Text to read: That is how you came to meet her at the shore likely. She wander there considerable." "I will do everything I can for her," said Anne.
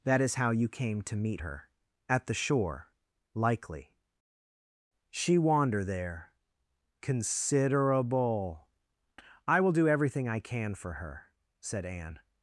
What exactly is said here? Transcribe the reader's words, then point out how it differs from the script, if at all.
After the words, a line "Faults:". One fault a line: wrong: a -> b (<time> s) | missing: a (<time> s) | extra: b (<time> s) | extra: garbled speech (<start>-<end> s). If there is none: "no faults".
That is how you came to meet her at the shore likely. She wander there considerable." "I will do everything I can for her," said Anne.
Faults:
no faults